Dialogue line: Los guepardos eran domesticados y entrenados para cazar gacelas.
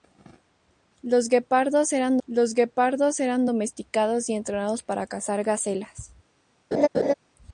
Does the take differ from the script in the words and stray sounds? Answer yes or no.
yes